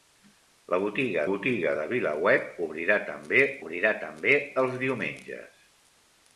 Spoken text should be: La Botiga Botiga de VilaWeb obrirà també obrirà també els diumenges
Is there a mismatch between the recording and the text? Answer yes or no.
no